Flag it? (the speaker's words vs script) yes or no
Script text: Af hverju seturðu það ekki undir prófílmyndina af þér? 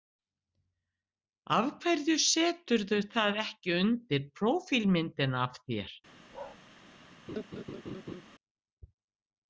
no